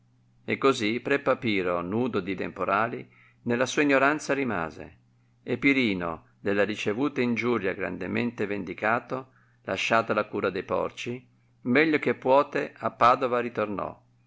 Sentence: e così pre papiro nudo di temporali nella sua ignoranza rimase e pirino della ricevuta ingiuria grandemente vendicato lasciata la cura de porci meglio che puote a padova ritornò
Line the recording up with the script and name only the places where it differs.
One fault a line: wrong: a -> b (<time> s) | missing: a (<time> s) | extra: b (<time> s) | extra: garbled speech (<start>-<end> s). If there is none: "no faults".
no faults